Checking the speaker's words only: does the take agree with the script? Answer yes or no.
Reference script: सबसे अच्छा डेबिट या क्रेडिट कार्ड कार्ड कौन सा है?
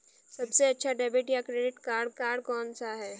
yes